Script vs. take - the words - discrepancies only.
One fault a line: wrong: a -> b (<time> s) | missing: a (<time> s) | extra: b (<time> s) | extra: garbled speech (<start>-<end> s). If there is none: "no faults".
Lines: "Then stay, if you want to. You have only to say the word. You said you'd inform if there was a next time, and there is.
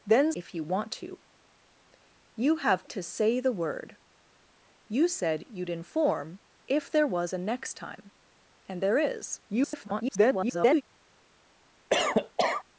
missing: stay (0.3 s)
missing: only (2.8 s)
extra: garbled speech (9.5-10.8 s)